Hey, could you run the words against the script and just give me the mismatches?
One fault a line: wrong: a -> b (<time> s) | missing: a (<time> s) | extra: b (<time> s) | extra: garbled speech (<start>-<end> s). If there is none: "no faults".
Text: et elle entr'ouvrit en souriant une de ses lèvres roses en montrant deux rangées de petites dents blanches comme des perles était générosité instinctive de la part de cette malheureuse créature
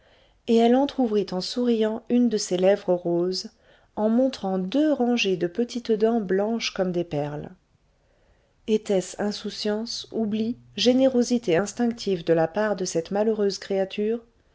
extra: ce insouciance oubli (9.0 s)